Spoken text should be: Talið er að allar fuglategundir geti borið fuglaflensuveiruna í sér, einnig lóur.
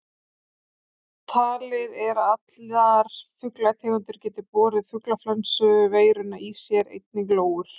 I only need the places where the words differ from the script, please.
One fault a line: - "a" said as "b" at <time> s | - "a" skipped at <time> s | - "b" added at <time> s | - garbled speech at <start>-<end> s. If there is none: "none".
none